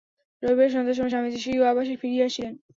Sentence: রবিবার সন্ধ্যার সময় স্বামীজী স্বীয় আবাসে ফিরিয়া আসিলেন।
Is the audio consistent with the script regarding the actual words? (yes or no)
yes